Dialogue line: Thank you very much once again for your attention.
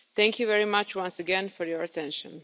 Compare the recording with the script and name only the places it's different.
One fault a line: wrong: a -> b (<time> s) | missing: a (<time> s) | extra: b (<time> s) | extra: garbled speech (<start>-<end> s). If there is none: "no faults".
no faults